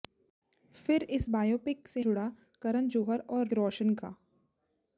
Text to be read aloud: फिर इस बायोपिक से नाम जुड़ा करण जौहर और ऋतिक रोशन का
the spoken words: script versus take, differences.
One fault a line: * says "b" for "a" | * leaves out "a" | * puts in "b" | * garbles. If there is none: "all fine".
* leaves out "नाम"
* leaves out "ऋतिक"